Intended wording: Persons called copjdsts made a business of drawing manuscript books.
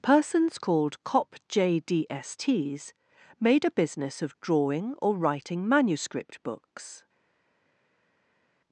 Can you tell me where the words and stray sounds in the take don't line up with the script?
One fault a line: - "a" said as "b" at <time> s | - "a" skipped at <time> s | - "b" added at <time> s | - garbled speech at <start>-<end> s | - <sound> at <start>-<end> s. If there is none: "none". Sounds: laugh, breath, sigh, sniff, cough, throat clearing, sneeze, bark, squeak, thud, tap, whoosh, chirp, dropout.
- "or writing" added at 5.0 s